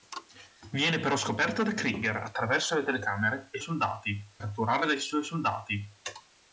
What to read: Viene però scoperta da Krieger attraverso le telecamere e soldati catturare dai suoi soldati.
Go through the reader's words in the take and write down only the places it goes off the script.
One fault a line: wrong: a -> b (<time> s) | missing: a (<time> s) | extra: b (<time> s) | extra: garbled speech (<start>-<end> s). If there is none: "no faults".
no faults